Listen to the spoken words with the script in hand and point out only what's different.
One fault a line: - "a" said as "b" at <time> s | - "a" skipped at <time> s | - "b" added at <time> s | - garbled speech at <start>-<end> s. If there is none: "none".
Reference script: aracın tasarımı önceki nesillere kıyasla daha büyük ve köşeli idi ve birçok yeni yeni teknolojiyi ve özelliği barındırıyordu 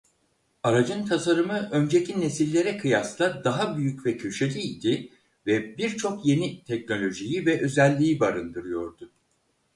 - "yeni" skipped at 6.6 s